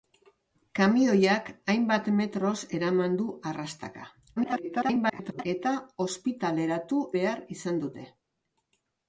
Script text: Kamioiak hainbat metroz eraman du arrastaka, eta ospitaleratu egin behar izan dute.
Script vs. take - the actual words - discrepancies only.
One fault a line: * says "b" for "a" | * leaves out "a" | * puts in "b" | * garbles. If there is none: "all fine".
* garbles
* leaves out "egin"